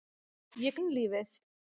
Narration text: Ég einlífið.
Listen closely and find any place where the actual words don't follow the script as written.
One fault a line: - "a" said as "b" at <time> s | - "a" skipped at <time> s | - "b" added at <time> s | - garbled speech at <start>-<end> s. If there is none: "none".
none